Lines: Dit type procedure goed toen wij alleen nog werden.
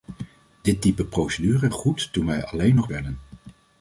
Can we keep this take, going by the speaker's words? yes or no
yes